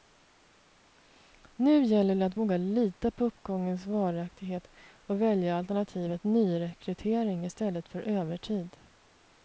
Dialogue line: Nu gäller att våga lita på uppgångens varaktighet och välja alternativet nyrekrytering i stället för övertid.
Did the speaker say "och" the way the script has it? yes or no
yes